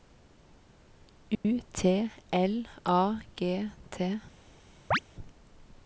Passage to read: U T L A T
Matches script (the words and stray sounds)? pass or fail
fail